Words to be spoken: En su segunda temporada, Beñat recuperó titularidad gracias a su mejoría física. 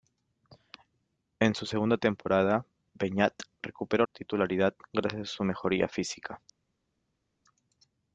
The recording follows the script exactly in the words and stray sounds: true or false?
true